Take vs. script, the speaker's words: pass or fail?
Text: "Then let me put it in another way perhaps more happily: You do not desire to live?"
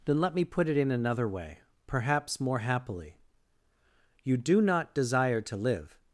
pass